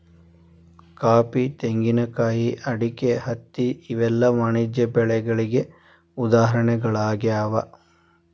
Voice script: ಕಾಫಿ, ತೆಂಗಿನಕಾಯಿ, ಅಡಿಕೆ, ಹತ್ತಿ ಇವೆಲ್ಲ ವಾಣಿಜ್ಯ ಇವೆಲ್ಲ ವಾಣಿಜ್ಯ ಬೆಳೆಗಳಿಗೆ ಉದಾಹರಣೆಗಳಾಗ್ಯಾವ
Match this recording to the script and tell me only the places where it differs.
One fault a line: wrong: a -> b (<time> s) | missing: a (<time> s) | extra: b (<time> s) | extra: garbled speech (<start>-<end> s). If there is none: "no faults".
missing: ಇವೆಲ್ಲ ವಾಣಿಜ್ಯ (4.9 s)